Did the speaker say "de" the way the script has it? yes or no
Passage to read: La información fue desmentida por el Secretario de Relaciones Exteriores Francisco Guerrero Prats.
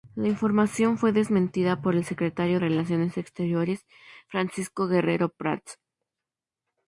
no